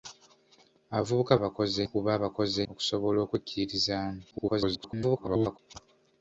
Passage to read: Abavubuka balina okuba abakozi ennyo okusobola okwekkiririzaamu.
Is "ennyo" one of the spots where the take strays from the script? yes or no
yes